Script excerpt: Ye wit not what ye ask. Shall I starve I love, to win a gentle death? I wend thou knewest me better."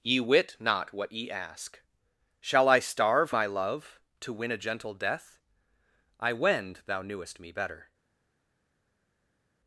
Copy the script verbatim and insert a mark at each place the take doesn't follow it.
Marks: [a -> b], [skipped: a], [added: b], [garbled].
Ye wit not what ye ask. Shall I starve I love, to win a gentle death? I wend thou knewest me better."